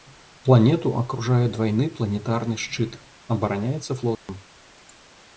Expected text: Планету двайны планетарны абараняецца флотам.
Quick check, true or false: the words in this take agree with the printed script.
false